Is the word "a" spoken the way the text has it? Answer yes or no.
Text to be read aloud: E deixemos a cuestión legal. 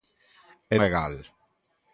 no